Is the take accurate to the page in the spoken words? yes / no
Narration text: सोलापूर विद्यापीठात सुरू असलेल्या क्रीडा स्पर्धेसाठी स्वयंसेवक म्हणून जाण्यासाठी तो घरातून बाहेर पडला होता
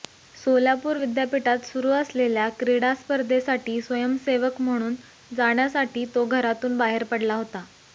yes